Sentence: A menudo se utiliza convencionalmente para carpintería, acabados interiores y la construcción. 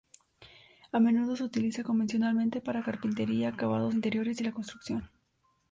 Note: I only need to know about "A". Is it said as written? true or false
true